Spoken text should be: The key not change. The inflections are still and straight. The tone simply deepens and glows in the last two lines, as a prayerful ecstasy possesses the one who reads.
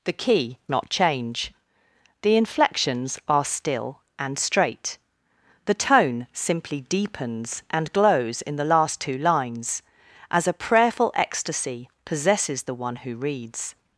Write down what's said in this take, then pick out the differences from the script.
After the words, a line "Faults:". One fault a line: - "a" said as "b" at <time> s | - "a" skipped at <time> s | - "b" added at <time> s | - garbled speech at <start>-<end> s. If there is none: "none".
The key not change. The inflections are still and straight. The tone simply deepens and glows in the last two lines, as a prayerful ecstasy possesses the one who reads.
Faults:
none